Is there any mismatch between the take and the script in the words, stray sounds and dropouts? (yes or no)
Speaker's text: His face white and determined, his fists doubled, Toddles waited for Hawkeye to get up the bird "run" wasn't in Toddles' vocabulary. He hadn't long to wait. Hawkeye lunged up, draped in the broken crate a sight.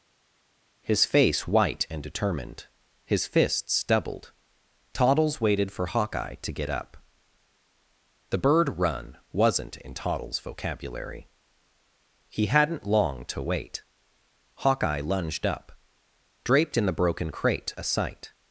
no